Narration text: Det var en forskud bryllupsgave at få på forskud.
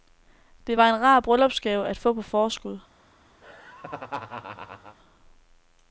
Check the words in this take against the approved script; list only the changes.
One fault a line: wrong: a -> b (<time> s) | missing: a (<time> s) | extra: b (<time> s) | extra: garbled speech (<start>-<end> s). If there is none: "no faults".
wrong: forskud -> rar (1.0 s)